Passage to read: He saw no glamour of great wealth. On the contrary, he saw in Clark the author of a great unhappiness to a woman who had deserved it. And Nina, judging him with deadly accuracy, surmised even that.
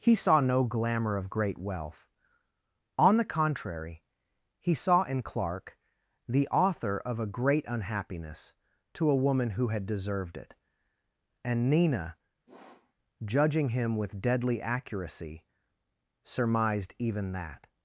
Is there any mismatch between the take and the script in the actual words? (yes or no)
no